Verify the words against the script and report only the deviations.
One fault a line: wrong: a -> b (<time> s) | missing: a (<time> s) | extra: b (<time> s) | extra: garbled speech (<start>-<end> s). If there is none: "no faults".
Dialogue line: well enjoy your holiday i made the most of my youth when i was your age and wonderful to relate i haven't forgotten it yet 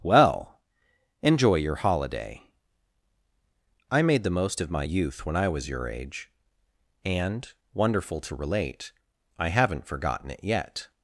no faults